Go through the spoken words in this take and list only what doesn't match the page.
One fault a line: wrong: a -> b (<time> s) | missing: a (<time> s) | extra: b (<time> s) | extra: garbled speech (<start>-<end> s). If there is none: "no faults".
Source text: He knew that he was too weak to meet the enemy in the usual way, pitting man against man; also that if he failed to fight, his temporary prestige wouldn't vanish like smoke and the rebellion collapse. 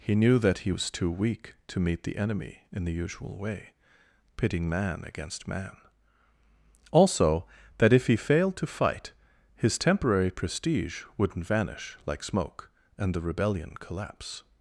no faults